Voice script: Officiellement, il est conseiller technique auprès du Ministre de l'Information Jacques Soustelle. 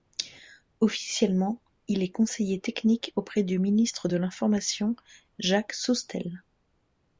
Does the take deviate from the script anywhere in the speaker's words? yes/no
no